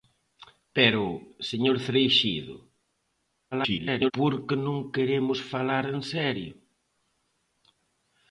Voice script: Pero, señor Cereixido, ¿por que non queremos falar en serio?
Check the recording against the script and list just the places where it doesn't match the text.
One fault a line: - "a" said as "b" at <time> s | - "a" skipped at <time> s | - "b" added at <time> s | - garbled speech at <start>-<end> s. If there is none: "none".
- garbled speech at 3.5-4.1 s